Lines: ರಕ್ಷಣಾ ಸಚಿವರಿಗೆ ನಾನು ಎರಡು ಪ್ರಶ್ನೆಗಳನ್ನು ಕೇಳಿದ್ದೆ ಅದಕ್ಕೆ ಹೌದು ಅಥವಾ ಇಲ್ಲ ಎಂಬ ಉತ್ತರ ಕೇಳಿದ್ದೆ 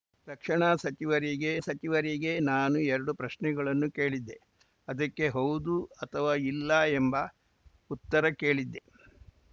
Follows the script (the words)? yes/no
no